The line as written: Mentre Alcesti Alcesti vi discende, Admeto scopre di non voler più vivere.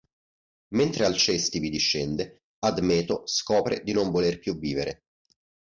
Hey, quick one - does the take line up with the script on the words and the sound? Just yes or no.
no